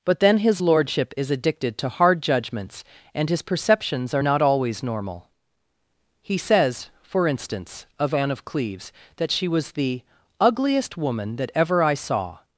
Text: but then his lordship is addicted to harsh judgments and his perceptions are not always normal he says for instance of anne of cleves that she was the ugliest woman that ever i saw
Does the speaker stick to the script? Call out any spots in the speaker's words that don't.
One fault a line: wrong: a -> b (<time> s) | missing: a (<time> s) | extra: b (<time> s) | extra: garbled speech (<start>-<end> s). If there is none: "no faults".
wrong: harsh -> hard (1.9 s)